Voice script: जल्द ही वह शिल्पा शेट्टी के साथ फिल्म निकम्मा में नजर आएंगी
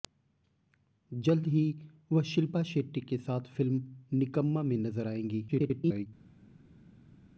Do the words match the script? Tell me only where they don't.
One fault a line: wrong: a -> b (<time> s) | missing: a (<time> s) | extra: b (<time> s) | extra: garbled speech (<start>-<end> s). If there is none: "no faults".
extra: garbled speech (5.5-6.1 s)